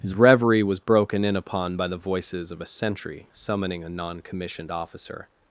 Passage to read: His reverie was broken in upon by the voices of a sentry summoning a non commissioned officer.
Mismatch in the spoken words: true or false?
false